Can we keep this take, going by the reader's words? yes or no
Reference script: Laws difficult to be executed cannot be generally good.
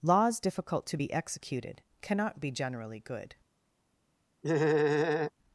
yes